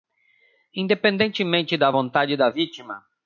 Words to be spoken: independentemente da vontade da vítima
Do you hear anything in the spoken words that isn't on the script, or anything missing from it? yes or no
no